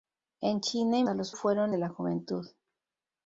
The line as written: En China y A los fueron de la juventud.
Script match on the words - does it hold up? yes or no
yes